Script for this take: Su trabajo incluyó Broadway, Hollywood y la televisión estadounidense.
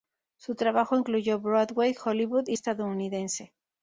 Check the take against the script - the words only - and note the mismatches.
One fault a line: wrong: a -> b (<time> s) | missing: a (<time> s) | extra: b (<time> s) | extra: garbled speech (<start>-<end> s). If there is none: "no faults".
missing: la televisión (2.6 s)